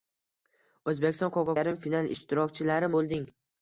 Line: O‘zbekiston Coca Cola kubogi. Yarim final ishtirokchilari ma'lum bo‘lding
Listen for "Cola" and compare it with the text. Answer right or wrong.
wrong